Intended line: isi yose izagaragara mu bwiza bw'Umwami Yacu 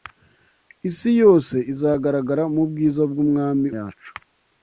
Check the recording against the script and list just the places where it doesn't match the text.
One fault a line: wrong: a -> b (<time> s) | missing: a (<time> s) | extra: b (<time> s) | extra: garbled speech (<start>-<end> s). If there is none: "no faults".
no faults